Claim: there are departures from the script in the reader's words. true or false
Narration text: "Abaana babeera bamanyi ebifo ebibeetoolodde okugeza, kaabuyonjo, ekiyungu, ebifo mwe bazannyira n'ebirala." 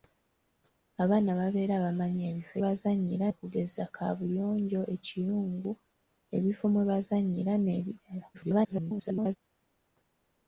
true